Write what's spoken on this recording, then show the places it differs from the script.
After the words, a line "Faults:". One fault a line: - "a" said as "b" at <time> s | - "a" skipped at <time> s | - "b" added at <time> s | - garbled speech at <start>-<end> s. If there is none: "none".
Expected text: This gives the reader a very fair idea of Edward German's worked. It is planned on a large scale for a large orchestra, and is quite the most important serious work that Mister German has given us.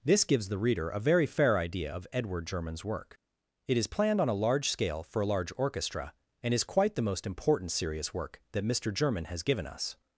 This gives the reader a very fair idea of Edward German's work. It is planned on a large scale for a large orchestra, and is quite the most important serious work that Mister German has given us.
Faults:
- "worked" said as "work" at 2.8 s